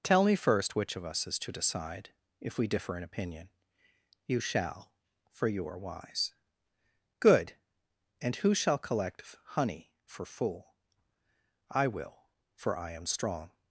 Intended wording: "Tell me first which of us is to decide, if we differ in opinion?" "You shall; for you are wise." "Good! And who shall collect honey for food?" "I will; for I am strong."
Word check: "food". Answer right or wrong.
wrong